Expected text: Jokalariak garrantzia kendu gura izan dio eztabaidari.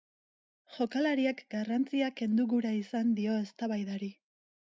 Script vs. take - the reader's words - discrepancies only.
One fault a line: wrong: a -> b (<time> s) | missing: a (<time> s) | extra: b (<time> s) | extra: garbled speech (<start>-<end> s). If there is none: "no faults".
no faults